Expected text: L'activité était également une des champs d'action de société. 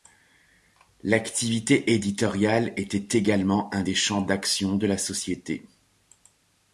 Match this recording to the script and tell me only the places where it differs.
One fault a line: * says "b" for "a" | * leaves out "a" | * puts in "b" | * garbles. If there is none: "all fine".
* puts in "éditoriale"
* says "un" for "une"
* puts in "la"